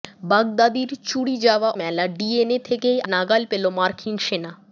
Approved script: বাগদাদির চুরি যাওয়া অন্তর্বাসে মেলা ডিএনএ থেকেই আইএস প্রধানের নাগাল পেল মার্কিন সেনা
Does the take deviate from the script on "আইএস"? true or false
true